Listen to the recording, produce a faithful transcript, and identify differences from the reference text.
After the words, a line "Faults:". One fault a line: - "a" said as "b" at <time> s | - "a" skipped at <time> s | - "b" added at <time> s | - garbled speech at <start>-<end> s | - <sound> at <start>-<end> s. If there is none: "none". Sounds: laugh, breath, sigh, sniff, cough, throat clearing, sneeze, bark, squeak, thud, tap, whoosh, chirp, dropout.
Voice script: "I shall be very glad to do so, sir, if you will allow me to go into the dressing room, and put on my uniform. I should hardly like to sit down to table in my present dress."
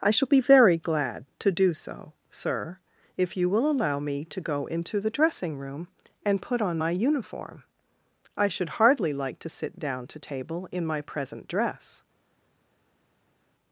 "I shall be very glad to do so, sir, if you will allow me to go into the dressing room, and put on my uniform. I should hardly like to sit down to table in my present dress."
Faults:
none